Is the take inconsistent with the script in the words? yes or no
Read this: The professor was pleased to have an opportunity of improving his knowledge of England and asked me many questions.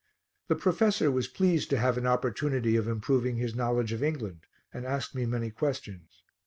no